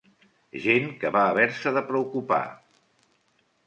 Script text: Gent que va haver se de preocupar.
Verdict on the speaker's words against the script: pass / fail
pass